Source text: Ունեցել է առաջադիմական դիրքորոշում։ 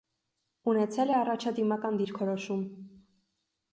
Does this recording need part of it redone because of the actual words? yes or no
no